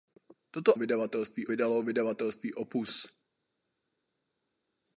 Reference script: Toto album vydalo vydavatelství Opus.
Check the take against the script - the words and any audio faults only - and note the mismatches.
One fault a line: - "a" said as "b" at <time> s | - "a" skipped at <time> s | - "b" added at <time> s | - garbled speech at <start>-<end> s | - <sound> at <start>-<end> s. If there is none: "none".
- "album" said as "vydavatelství" at 0.8 s